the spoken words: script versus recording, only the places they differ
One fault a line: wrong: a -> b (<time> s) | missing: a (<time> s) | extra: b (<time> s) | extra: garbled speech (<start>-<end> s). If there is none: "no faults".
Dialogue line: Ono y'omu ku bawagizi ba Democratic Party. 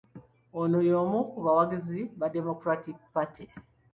no faults